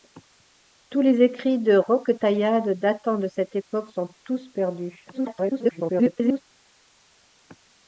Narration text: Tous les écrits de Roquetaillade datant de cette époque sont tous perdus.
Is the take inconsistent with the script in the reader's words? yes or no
yes